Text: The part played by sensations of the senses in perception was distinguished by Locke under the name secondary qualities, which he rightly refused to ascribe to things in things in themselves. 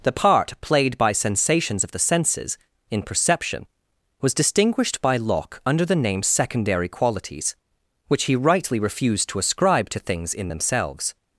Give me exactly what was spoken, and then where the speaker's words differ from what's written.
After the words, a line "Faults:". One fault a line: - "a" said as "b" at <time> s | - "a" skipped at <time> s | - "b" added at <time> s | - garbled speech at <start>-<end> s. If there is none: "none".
The part played by sensations of the senses in perception was distinguished by Locke under the name secondary qualities, which he rightly refused to ascribe to things in themselves.
Faults:
- "things in" skipped at 10.5 s